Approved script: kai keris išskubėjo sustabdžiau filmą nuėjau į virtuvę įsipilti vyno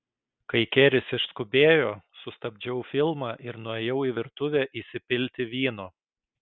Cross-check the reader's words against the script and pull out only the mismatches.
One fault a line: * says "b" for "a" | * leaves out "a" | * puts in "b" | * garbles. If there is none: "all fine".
* puts in "ir"